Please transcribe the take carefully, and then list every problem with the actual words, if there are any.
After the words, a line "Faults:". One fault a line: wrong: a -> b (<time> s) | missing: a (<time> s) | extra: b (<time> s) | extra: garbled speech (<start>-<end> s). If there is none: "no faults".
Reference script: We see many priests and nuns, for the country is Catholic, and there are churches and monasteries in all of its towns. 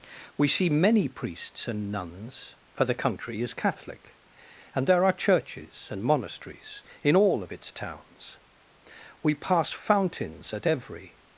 We see many priests and nuns, for the country is Catholic, and there are churches and monasteries in all of its towns. We pass fountains at every
Faults:
extra: We pass fountains at every (9.2 s)